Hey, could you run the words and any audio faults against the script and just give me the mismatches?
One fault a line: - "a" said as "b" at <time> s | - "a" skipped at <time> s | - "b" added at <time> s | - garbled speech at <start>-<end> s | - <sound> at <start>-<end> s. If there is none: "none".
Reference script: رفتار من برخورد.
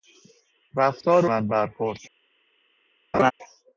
- laugh at 3.1-3.3 s